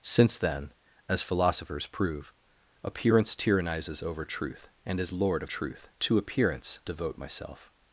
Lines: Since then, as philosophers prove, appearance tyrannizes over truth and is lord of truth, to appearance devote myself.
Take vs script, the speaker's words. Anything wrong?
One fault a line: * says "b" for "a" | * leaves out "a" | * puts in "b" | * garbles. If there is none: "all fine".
all fine